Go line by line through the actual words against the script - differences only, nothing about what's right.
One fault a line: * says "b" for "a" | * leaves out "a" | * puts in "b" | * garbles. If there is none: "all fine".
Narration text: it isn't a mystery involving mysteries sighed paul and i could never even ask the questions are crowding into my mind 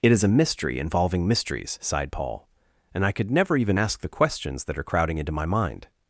* says "is" for "isn't"
* puts in "that"